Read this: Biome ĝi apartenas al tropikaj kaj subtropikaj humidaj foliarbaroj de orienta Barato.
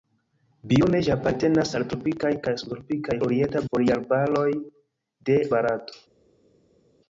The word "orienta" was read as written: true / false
false